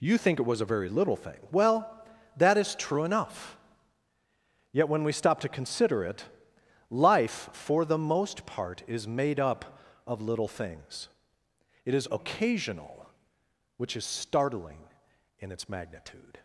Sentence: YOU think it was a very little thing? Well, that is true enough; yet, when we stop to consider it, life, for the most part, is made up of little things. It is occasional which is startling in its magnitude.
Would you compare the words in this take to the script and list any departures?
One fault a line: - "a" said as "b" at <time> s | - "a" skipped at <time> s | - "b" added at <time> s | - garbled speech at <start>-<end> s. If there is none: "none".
none